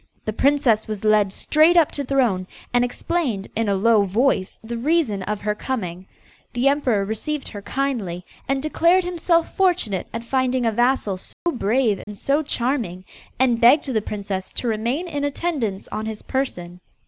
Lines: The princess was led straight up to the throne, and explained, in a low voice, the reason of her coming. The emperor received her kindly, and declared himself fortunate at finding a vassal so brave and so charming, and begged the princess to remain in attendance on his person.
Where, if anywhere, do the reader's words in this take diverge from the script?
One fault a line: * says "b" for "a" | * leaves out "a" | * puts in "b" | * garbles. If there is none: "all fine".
* leaves out "the"